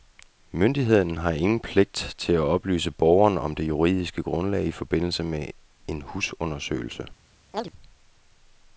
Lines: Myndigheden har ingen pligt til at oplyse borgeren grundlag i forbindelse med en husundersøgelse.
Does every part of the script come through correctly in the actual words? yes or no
no